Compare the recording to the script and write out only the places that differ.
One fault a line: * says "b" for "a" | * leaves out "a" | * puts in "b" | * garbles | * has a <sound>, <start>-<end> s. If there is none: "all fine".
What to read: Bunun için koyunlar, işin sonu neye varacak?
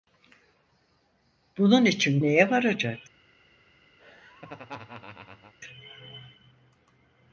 * leaves out "koyunlar işin sonu"
* has a laugh, 4.0-5.5 s